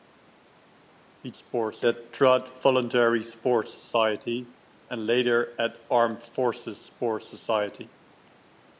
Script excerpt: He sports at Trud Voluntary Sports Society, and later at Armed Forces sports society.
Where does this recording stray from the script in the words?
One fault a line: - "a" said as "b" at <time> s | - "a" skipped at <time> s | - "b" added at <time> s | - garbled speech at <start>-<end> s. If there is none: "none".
none